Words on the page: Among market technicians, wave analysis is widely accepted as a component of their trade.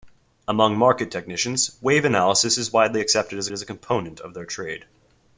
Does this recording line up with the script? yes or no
no